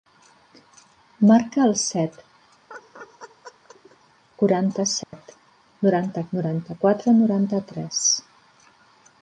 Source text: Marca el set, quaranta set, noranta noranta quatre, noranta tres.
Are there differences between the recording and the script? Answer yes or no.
no